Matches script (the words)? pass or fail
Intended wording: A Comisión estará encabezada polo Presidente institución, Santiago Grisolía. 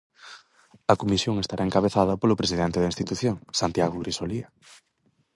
fail